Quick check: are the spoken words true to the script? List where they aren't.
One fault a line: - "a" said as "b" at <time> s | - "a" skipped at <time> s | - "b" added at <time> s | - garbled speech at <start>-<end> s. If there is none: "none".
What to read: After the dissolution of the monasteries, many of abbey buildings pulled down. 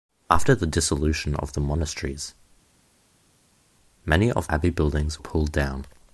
none